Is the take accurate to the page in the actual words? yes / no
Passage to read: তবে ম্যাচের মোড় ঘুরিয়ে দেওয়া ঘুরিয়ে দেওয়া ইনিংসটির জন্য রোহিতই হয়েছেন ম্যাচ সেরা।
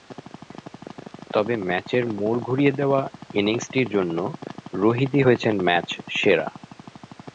no